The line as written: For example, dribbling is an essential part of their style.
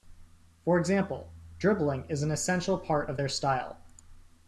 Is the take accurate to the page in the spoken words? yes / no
yes